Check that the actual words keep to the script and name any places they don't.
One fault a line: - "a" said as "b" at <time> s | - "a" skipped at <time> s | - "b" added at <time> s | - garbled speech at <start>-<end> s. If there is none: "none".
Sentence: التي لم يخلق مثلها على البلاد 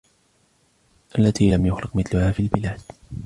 - "على" said as "في" at 2.3 s